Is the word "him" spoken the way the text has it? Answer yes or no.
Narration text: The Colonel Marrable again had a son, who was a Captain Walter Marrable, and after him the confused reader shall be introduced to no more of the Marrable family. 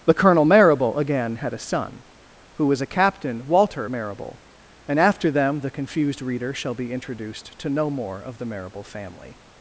no